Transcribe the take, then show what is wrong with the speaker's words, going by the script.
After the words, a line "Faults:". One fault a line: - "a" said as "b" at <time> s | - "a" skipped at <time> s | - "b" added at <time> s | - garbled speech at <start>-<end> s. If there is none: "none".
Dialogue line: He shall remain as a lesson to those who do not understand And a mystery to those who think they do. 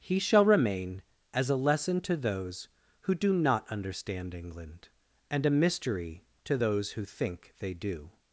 He shall remain as a lesson to those who do not understand England, and a mystery to those who think they do.
Faults:
- "England" added at 4.3 s